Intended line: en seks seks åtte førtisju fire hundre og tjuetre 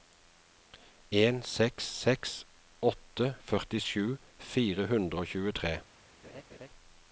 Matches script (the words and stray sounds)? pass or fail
fail